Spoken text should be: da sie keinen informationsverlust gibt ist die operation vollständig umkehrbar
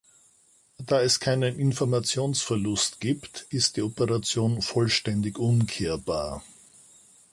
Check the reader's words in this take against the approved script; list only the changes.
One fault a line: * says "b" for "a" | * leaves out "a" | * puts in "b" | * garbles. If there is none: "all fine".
* says "es" for "sie"